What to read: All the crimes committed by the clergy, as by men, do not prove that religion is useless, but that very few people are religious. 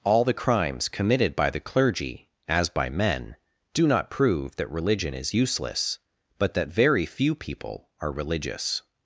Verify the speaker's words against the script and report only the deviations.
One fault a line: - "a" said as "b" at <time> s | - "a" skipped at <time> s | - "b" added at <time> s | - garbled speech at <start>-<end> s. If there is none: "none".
none